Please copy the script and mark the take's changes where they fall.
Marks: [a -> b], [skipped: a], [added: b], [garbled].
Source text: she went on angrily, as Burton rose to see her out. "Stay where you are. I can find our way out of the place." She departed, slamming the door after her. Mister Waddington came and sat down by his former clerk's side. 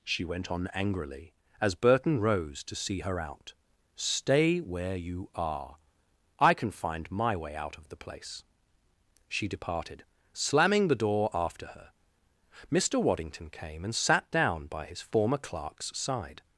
she went on angrily, as Burton rose to see her out. "Stay where you are. I can find [our -> my] way out of the place." She departed, slamming the door after her. Mister Waddington came and sat down by his former clerk's side.